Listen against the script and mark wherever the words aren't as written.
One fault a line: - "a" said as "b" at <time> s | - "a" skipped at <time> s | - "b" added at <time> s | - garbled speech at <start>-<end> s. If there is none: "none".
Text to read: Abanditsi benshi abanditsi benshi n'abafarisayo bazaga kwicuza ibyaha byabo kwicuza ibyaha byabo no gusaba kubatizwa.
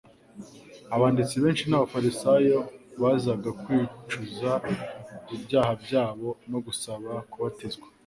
- "abanditsi benshi" skipped at 1.6 s
- "kwicuza ibyaha byabo" skipped at 6.3 s